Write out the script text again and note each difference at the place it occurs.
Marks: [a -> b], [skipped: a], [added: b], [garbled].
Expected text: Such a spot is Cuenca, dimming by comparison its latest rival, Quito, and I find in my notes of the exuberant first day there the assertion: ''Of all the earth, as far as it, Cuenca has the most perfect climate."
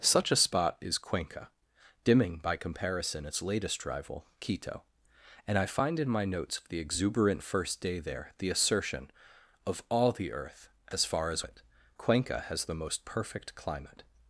Such a spot is Cuenca, dimming by comparison its latest rival, Quito, and I find in my notes of the exuberant first day there the assertion: ''Of all the earth, as far as it, Cuenca has the most perfect climate."